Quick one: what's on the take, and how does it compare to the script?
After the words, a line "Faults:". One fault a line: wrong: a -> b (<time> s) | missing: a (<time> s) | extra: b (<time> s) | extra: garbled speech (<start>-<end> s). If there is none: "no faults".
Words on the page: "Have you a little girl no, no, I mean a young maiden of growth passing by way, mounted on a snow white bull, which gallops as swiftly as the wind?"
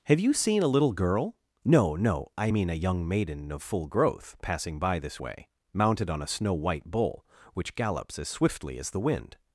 "Have you seen a little girl no, no, I mean a young maiden of full growth passing by this way, mounted on a snow white bull, which gallops as swiftly as the wind?"
Faults:
extra: seen (0.3 s)
extra: full (3.6 s)
extra: this (5.0 s)